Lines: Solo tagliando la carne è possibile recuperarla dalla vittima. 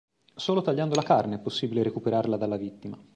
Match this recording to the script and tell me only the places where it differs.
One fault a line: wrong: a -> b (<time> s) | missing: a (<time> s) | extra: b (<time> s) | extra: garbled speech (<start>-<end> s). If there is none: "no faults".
no faults